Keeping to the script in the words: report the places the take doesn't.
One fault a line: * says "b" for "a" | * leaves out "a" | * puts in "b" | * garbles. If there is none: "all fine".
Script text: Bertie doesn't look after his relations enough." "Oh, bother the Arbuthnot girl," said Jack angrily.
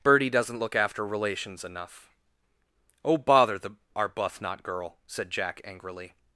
* leaves out "his"